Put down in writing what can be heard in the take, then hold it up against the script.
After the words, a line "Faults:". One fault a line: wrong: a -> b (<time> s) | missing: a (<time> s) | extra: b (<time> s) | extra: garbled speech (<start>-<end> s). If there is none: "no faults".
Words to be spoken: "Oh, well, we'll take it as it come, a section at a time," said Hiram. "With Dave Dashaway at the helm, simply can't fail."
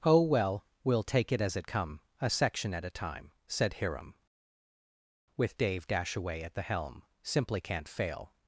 "Oh, well, we'll take it as it come, a section at a time," said Hiram. "With Dave Dashaway at the helm, simply can't fail."
Faults:
no faults